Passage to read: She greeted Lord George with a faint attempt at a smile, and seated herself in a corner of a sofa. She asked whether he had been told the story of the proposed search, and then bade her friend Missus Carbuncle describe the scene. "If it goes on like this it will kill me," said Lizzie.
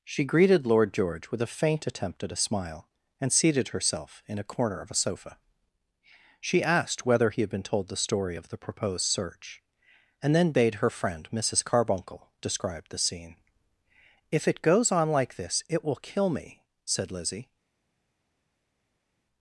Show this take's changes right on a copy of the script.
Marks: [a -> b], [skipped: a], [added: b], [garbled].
She greeted Lord George with a faint attempt at a smile, and seated herself in a corner of a sofa. She asked whether he had been told the story of the proposed search, and then bade her friend Missus Carbuncle describe the scene. "If it goes on like this it will kill me," said Lizzie.